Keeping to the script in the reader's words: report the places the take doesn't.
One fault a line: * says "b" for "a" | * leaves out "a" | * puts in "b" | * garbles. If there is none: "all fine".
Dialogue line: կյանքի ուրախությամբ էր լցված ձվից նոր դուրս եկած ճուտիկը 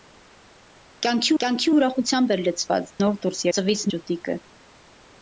* puts in "կյանքի"
* leaves out "ձվից"
* says "ձվից" for "եկած"